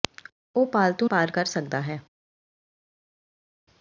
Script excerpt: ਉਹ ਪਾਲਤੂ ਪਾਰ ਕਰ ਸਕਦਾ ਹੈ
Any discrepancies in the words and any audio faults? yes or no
no